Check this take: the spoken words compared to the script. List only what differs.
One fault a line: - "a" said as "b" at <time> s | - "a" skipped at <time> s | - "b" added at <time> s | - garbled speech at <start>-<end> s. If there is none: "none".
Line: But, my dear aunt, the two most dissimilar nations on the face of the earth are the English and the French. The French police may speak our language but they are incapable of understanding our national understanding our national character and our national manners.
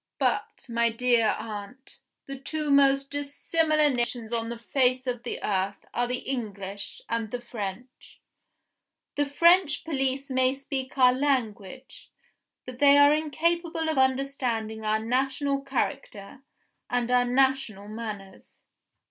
- "understanding our national" skipped at 15.6 s